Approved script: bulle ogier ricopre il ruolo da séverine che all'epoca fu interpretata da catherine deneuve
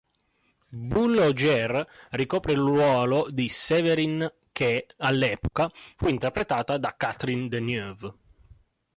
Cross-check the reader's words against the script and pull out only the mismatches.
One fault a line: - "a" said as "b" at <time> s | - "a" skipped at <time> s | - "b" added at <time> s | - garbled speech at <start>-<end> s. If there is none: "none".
- "da" said as "di" at 3.3 s